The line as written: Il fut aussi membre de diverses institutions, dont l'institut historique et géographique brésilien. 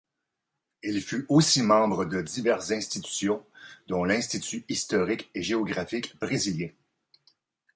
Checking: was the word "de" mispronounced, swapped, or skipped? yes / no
no